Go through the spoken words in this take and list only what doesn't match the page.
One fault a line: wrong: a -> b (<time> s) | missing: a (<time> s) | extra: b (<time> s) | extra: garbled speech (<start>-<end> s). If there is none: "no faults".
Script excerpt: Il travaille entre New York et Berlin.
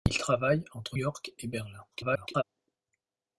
missing: New (1.0 s)
extra: garbled speech (1.9-2.4 s)